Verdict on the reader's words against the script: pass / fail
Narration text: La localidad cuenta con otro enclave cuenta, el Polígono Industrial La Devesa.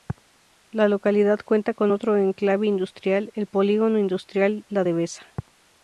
fail